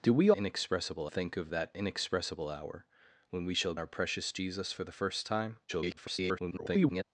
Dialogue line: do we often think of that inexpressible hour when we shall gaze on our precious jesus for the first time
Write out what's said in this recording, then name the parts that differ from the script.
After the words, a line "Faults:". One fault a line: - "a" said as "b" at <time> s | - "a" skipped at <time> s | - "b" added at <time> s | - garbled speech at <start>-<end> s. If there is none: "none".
do we inexpressible think of that inexpressible hour when we shall our precious jesus for the first time [garbled]
Faults:
- "often" said as "inexpressible" at 0.3 s
- "gaze on" skipped at 3.7 s
- garbled speech at 5.7-7.0 s